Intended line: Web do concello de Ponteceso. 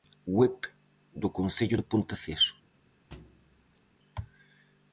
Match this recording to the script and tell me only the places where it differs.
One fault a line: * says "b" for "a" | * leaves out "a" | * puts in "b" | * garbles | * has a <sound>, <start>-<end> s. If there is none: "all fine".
* has a thud, 3.1-3.8 s